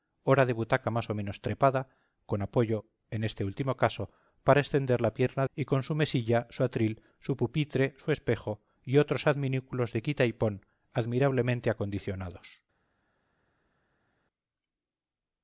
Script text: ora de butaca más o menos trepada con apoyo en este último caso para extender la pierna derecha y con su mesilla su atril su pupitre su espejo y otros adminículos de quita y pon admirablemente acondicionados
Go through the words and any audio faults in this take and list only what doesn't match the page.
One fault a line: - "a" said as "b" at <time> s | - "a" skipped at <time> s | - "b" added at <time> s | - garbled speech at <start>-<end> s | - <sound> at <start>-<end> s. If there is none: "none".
- "derecha" skipped at 5.5 s